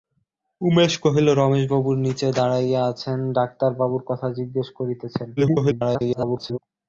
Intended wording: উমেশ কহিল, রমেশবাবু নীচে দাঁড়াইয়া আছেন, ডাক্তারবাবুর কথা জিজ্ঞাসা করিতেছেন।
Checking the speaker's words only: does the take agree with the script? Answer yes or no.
no